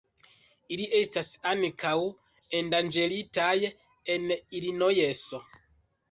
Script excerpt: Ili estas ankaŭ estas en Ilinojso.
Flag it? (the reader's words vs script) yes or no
yes